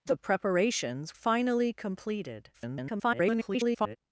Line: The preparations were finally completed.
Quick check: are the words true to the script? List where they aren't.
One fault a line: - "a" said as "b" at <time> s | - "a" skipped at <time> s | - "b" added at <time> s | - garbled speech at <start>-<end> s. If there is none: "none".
- "were" skipped at 1.1 s
- garbled speech at 2.5-4.0 s